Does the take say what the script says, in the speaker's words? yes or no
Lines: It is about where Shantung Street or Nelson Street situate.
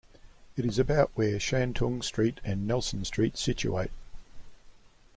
no